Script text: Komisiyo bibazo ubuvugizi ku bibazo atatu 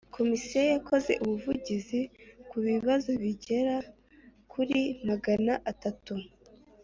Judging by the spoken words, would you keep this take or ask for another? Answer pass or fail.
fail